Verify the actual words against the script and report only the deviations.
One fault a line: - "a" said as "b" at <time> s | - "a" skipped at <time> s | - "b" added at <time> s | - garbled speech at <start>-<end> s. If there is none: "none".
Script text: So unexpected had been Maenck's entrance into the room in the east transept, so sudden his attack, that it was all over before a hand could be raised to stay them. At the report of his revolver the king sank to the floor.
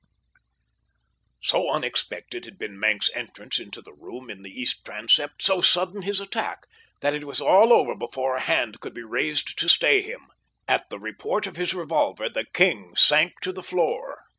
- "them" said as "him" at 10.0 s